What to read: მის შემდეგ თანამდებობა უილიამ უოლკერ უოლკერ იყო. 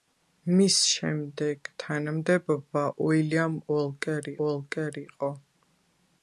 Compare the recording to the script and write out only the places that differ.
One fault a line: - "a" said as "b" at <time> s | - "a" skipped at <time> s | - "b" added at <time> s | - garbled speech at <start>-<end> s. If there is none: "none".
none